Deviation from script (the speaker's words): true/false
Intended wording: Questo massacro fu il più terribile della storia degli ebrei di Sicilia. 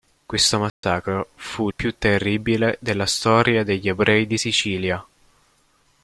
false